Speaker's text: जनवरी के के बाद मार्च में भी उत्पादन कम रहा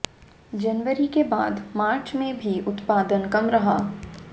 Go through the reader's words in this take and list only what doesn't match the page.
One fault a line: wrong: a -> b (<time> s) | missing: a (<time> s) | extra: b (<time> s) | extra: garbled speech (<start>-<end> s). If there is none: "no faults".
missing: के (1.2 s)